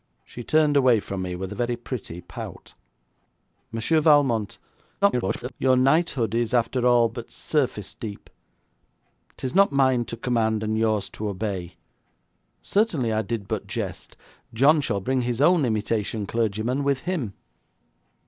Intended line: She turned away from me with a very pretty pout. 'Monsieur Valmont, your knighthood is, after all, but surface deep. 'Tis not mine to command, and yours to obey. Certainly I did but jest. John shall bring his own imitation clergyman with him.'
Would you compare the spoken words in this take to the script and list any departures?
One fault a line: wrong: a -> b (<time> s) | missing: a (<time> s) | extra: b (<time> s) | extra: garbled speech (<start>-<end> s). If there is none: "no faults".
extra: garbled speech (5.0-5.5 s)